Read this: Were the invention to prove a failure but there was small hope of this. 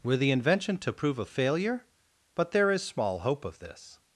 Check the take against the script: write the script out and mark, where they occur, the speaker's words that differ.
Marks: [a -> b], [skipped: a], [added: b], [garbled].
Were the invention to prove a failure but there [was -> is] small hope of this.